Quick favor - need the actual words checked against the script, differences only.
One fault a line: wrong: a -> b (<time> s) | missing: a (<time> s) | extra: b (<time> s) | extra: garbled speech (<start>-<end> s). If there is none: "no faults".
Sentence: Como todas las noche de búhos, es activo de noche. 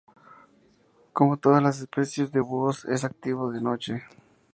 wrong: noche -> especies (1.8 s)